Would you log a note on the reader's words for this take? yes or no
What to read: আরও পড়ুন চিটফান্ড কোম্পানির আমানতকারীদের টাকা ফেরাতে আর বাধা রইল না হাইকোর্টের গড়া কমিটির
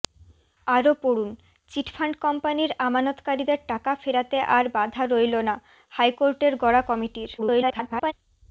yes